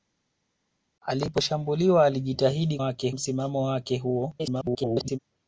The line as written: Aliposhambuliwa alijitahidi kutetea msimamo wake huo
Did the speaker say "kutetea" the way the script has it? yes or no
no